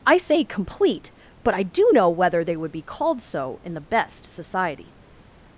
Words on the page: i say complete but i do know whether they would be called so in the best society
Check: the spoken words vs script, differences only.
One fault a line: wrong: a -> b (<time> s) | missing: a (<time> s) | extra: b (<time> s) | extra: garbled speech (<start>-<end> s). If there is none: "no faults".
no faults